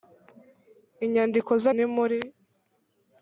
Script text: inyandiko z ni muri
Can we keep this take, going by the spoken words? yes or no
yes